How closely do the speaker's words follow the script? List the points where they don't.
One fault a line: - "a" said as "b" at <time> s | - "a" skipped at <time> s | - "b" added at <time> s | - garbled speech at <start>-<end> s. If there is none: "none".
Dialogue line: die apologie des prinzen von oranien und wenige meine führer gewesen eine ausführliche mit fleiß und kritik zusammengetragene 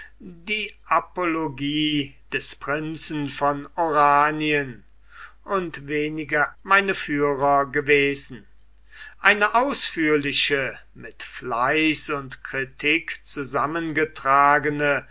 none